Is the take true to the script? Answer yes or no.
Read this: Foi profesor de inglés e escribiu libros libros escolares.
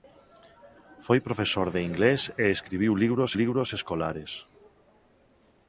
yes